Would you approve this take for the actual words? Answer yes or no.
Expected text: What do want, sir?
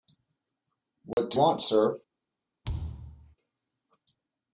yes